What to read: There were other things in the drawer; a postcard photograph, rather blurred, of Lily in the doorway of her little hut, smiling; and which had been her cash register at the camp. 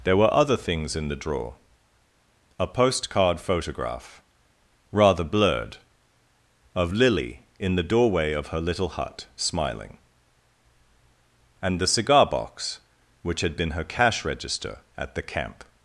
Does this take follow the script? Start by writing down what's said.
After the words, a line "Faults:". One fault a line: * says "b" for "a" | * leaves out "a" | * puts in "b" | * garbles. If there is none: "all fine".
There were other things in the drawer; a postcard photograph, rather blurred, of Lily in the doorway of her little hut, smiling; and the cigar box which had been her cash register at the camp.
Faults:
* puts in "the cigar box"